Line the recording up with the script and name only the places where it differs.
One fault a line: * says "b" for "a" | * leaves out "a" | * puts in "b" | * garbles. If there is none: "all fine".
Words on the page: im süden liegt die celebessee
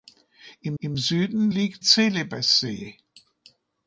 * puts in "im"
* leaves out "die"